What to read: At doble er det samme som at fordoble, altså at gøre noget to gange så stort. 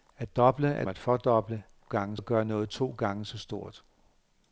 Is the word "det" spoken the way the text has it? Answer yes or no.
no